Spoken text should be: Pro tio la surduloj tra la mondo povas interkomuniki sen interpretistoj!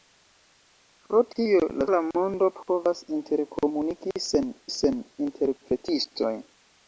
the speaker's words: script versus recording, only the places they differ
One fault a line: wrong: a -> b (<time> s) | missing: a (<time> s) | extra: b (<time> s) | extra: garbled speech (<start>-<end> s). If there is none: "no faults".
missing: surduloj tra (1.9 s)
extra: sen (4.8 s)